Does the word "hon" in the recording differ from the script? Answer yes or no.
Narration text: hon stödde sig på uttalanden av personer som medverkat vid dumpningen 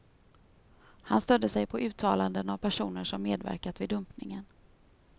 yes